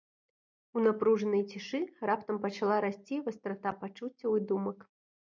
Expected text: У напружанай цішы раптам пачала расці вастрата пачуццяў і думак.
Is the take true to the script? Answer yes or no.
yes